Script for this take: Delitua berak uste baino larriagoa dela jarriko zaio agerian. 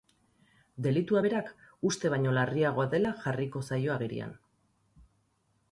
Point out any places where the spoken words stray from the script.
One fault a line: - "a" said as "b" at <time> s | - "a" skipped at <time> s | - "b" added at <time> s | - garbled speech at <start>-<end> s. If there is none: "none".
none